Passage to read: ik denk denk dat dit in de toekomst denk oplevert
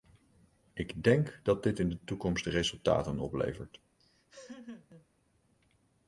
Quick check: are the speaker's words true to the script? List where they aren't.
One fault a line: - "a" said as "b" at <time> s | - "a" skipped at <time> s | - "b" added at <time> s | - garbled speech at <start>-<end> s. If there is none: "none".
- "denk" skipped at 1.4 s
- "denk" said as "resultaten" at 2.5 s